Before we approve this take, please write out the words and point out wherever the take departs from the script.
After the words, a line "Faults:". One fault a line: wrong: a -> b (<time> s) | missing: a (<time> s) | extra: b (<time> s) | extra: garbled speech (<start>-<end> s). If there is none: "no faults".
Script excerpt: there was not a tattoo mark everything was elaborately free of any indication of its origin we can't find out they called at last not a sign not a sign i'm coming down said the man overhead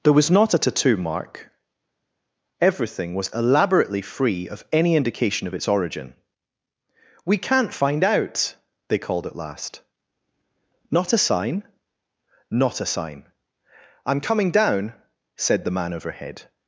there was not a tattoo mark everything was elaborately free of any indication of its origin we can't find out they called at last not a sign not a sign i'm coming down said the man overhead
Faults:
no faults